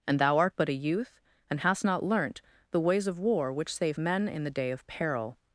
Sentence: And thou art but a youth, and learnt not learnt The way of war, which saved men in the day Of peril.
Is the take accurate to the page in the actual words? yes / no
no